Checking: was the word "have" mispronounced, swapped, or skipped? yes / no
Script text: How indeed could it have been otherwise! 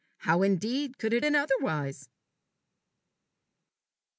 yes